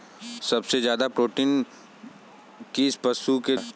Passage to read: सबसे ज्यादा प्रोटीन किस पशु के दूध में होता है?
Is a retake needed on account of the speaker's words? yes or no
yes